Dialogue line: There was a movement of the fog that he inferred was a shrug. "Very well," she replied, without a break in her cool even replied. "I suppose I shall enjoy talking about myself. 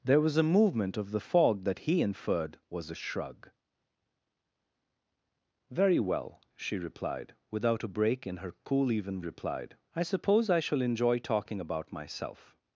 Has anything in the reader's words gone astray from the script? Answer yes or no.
no